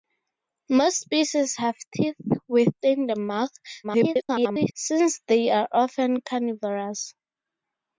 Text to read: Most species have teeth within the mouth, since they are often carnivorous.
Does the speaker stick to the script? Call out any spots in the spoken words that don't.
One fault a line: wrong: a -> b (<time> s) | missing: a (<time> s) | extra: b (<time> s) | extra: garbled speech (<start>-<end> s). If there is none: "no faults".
extra: garbled speech (3.8-4.7 s)